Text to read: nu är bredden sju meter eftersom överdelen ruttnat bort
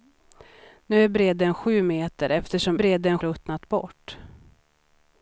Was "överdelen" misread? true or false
true